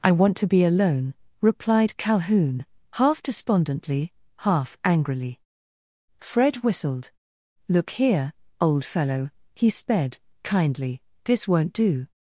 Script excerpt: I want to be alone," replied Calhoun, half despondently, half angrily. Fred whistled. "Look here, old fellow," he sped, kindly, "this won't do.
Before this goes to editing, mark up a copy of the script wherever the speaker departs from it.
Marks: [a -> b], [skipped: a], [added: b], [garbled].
I want to be alone," replied Calhoun, half despondently, half angrily. Fred whistled. "Look here, old fellow," he sped, kindly, "this won't do.